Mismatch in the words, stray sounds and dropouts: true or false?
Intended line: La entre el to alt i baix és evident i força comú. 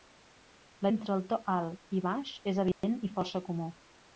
true